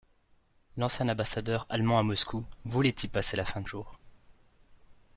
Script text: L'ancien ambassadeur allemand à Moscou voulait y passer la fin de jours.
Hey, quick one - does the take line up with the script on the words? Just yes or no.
yes